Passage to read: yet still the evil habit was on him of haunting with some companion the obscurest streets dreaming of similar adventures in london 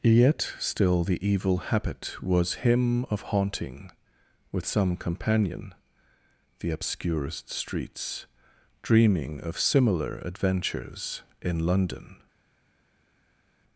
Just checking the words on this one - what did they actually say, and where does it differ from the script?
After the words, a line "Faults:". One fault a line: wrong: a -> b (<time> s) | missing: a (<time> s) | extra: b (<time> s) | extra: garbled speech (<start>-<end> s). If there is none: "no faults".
yet still the evil habit was him of haunting with some companion the obscurest streets dreaming of similar adventures in london
Faults:
missing: on (2.5 s)